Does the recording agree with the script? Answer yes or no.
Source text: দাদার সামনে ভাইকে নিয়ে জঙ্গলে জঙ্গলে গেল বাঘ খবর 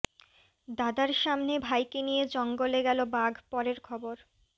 no